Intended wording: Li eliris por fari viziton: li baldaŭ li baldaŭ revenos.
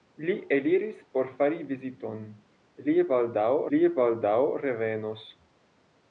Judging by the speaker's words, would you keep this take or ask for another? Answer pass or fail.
pass